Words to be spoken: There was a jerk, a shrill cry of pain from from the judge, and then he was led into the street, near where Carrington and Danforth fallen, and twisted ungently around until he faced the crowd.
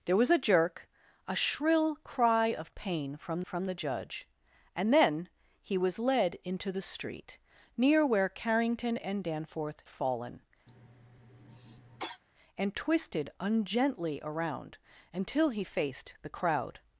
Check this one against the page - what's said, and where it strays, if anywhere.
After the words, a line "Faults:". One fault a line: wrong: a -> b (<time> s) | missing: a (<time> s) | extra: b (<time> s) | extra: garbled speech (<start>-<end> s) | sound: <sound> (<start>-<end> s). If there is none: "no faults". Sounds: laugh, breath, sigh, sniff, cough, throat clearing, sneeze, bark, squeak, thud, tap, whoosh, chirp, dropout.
There was a jerk, a shrill cry of pain from from the judge, and then he was led into the street, near where Carrington and Danforth fallen, and twisted ungently around until he faced the crowd.
Faults:
sound: cough (10.7-12.2 s)